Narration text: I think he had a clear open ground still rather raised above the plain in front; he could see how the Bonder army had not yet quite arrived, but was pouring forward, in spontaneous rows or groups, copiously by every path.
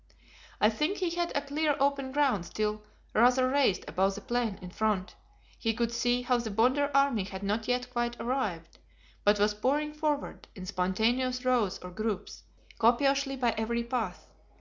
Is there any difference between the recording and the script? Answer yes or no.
no